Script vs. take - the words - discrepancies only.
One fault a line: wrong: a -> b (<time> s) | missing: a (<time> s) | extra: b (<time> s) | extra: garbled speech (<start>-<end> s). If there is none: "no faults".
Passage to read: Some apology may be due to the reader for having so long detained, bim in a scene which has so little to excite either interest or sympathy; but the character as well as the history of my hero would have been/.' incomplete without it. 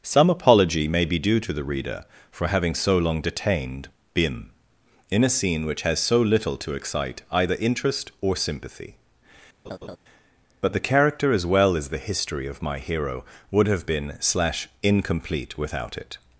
extra: slash (14.2 s)